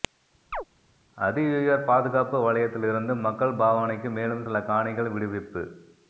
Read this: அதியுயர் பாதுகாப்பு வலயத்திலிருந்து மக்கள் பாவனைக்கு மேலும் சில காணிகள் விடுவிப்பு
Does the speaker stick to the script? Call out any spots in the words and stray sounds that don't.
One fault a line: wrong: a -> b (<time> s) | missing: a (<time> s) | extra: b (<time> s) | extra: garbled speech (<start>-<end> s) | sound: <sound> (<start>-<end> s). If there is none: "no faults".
sound: chirp (0.5-0.6 s)